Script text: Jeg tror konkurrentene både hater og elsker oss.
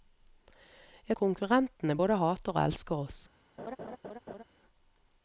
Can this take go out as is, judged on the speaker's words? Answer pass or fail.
fail